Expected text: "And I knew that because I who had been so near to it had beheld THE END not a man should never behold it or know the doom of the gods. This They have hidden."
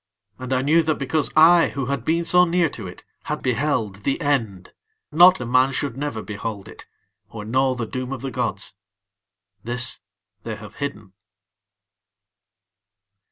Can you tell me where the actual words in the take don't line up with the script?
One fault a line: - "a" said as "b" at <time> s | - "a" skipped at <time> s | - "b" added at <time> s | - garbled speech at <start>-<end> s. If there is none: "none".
none